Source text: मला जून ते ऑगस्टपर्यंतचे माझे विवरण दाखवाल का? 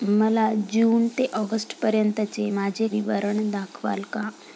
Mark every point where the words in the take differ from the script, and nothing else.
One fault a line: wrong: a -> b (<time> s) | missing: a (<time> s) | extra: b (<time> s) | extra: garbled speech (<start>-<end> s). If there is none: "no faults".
no faults